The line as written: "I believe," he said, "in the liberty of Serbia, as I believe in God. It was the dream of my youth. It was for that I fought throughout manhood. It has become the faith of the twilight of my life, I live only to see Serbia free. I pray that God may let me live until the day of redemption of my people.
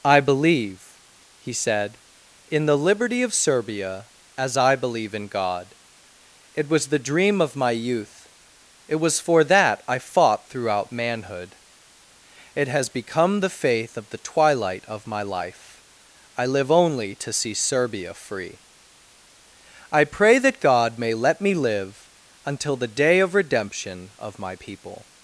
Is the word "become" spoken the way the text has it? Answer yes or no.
yes